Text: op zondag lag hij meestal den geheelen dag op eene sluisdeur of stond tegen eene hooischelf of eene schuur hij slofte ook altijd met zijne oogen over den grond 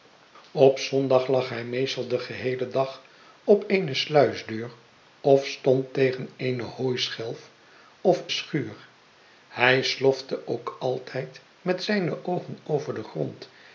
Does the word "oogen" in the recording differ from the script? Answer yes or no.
no